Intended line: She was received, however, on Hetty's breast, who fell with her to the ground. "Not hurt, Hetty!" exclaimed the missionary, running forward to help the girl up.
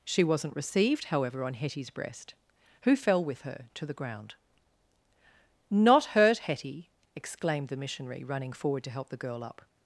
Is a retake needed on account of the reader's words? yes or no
yes